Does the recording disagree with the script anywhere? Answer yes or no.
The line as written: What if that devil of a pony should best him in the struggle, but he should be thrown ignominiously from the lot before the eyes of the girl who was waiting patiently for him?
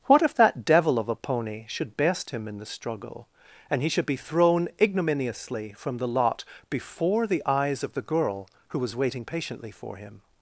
yes